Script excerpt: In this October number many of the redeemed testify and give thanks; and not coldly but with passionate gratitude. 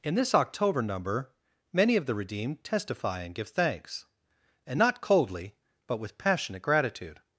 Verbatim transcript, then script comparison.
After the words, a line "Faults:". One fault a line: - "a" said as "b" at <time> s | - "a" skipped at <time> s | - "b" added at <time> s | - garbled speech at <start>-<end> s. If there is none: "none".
In this October number many of the redeemed testify and give thanks; and not coldly but with passionate gratitude.
Faults:
none